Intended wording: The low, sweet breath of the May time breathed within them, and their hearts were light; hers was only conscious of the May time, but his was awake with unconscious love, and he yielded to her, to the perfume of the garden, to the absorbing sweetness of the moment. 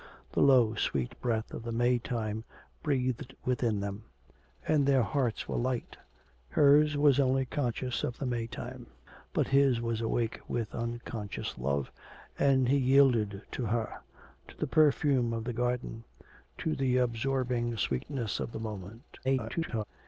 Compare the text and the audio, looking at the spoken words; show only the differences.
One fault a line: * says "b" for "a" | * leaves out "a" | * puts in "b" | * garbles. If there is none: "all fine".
* garbles